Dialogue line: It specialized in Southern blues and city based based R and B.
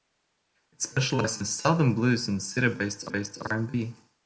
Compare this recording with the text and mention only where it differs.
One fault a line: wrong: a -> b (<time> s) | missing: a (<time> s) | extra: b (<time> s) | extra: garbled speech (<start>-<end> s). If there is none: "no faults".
no faults